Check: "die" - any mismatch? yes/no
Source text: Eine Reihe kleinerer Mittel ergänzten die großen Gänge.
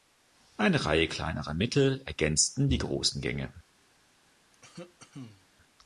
no